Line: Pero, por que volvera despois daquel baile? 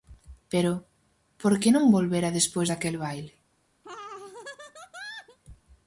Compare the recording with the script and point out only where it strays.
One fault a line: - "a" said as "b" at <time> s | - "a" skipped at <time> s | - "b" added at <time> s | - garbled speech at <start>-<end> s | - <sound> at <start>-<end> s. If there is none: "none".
- "non" added at 1.7 s
- laugh at 3.8-5.4 s